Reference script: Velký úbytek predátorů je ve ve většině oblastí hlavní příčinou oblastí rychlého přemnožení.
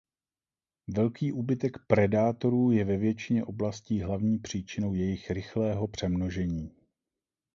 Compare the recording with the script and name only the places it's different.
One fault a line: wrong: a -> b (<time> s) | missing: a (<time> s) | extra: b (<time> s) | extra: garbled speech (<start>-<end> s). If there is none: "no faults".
missing: ve (3.0 s)
wrong: oblastí -> jejich (4.9 s)